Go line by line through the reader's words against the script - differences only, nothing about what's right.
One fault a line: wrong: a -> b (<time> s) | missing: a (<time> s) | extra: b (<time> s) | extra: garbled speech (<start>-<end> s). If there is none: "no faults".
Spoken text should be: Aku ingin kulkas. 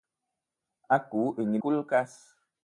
no faults